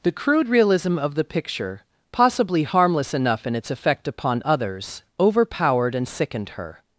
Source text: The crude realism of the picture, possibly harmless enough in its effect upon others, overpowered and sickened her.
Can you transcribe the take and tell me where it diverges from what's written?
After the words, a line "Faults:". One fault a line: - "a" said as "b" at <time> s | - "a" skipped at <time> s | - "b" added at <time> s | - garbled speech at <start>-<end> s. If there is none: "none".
The crude realism of the picture, possibly harmless enough in its effect upon others, overpowered and sickened her.
Faults:
none